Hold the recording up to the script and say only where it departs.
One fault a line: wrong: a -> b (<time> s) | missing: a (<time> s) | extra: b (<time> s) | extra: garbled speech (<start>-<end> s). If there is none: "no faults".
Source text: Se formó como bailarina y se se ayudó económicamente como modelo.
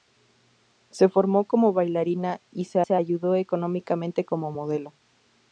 no faults